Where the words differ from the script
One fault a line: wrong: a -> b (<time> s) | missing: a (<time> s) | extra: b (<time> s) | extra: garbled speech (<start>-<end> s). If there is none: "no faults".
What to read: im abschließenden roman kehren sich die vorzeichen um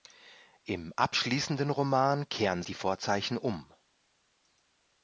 missing: sich (2.6 s)